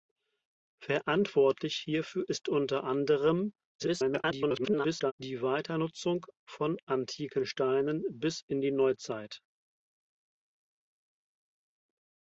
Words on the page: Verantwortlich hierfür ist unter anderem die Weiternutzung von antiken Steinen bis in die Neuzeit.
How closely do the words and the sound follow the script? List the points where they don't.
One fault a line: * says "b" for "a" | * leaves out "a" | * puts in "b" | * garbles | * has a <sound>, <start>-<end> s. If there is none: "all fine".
* garbles